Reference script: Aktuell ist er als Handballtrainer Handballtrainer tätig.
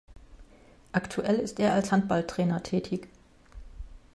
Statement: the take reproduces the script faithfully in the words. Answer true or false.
false